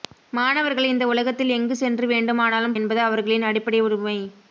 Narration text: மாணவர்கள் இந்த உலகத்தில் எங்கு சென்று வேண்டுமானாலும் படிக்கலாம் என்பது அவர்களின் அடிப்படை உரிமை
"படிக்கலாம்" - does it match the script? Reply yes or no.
no